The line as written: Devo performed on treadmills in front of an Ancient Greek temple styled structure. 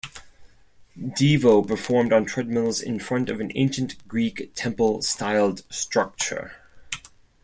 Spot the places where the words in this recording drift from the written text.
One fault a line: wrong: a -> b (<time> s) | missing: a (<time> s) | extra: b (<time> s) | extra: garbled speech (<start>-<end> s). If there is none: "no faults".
no faults